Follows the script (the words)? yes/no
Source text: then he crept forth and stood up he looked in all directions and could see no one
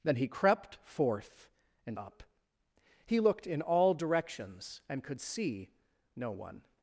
no